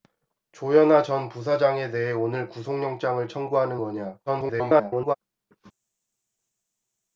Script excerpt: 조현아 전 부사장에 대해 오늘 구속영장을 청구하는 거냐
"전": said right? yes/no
yes